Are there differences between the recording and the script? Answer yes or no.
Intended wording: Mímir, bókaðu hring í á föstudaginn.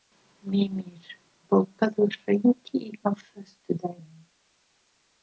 no